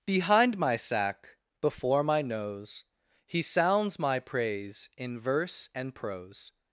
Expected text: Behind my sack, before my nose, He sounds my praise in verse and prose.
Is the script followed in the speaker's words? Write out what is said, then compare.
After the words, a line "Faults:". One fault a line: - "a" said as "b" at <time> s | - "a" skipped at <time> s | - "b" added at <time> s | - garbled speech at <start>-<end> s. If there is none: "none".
Behind my sack, before my nose, He sounds my praise in verse and prose.
Faults:
none